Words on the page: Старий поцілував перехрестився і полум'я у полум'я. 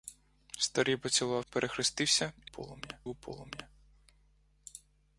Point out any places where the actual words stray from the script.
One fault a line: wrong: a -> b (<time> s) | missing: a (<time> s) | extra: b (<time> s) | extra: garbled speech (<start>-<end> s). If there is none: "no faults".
no faults